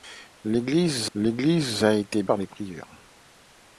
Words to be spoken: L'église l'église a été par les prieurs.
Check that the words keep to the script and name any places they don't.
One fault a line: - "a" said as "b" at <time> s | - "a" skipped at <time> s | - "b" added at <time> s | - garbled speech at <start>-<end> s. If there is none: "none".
none